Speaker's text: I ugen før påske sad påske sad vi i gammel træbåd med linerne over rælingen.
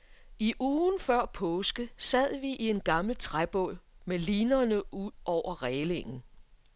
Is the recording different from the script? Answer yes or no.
yes